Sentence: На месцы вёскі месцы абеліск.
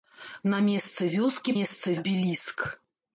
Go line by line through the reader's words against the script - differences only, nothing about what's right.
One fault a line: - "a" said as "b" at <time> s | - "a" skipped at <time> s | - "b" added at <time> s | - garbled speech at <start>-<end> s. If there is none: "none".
none